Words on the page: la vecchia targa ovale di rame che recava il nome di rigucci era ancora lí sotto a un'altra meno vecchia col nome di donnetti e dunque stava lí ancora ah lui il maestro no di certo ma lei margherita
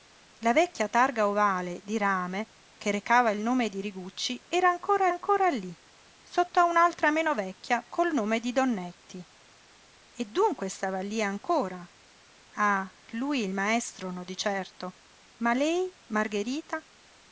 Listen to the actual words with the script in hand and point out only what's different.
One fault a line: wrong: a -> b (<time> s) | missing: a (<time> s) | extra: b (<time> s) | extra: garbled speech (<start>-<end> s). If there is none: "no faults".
extra: ancora (5.1 s)